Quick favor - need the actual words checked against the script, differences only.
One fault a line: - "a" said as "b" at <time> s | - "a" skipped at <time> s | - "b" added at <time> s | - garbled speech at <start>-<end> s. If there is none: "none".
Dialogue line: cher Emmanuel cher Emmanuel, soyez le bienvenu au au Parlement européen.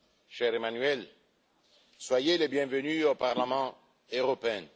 - "cher Emmanuel" skipped at 1.1 s
- "au" skipped at 3.1 s